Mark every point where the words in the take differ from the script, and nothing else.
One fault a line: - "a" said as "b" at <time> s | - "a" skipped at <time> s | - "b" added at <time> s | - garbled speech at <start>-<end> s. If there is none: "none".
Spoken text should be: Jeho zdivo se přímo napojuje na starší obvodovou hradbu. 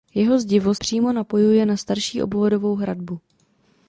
- "se" skipped at 0.8 s